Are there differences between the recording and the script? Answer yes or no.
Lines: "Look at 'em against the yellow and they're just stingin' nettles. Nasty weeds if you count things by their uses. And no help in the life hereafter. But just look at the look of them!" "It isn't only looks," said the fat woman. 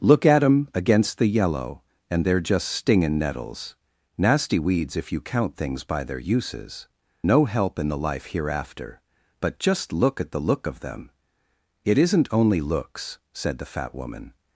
yes